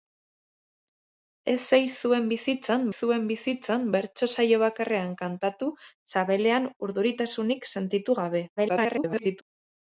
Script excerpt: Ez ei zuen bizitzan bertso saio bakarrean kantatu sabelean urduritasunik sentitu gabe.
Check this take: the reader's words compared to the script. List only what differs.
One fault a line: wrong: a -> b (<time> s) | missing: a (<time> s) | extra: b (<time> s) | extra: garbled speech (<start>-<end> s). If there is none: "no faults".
extra: zuen bizitzan (3.0 s)
extra: garbled speech (8.6-9.4 s)